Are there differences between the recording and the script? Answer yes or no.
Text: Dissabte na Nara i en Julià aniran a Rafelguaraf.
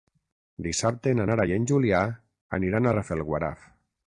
no